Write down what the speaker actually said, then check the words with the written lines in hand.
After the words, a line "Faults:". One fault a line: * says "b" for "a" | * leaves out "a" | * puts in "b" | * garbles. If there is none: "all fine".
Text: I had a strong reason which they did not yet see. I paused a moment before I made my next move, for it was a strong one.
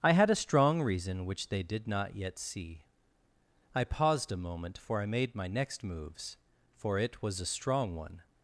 I had a strong reason which they did not yet see. I paused a moment for I made my next moves, for it was a strong one.
Faults:
* says "for" for "before"
* says "moves" for "move"